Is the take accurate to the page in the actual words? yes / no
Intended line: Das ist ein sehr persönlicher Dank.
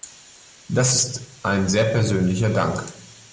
yes